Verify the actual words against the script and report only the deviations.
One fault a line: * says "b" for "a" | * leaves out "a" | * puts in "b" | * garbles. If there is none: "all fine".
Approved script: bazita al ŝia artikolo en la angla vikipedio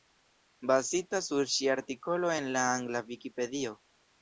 * says "sur" for "al"